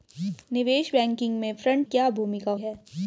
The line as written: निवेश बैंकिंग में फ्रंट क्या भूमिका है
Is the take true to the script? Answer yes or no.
yes